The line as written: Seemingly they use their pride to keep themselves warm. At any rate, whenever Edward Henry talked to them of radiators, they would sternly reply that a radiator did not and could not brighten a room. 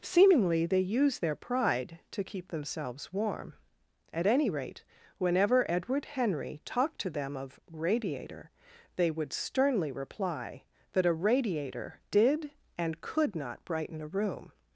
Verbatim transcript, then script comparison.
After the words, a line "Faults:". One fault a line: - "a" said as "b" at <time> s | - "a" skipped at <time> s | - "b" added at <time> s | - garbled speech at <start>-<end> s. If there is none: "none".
Seemingly they use their pride to keep themselves warm. At any rate, whenever Edward Henry talked to them of radiator, they would sternly reply that a radiator did and could not brighten a room.
Faults:
- "radiators" said as "radiator" at 7.7 s
- "not" skipped at 12.5 s